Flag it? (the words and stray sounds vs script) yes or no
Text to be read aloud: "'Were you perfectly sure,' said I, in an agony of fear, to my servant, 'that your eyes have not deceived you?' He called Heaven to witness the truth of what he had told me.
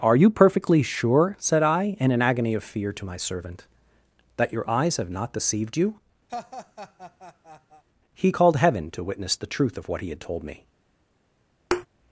yes